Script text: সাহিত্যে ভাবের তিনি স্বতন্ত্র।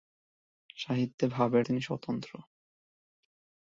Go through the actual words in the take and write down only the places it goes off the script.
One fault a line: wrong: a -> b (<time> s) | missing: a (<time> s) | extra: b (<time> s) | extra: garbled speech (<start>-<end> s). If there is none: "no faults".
no faults